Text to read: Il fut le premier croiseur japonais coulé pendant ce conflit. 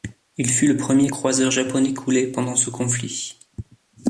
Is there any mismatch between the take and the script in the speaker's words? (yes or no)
no